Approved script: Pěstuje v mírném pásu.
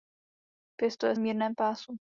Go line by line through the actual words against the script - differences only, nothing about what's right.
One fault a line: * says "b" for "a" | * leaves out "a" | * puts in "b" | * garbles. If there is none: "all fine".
all fine